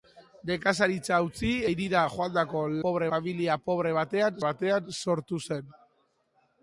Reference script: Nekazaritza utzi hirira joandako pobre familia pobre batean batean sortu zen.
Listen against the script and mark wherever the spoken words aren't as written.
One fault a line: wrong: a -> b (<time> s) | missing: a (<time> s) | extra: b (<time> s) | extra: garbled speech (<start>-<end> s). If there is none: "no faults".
no faults